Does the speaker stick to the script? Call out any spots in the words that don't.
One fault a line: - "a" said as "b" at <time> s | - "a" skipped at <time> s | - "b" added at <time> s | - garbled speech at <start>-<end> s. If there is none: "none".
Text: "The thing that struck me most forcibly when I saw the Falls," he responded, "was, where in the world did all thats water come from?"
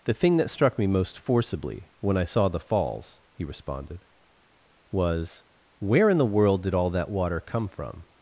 - "thats" said as "that" at 6.9 s